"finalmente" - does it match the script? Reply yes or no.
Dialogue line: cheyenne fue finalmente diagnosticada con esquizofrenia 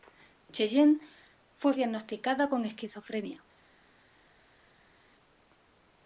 no